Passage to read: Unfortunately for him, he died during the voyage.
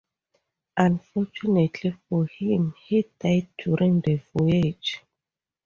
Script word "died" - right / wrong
right